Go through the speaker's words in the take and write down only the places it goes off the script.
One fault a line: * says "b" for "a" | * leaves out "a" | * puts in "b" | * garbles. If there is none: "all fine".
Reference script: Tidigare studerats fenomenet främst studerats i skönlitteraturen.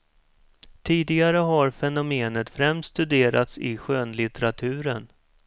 * says "har" for "studerats"